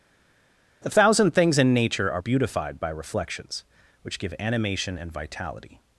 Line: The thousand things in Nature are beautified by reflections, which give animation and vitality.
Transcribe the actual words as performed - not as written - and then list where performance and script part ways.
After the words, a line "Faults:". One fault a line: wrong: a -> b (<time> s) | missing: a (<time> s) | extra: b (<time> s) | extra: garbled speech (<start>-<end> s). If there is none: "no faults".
The thousand things in Nature are beautified by reflections, which give animation and vitality.
Faults:
no faults